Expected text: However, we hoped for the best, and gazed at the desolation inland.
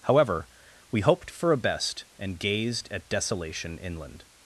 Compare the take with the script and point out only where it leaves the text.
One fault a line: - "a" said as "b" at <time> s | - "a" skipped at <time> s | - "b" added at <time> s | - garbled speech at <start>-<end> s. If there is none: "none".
- "the" said as "a" at 1.5 s
- "the" skipped at 3.1 s